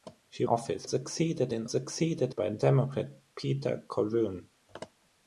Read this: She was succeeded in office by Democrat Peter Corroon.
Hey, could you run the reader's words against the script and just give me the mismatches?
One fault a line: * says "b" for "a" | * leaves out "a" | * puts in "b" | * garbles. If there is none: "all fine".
* says "office" for "was"
* says "succeeded" for "office"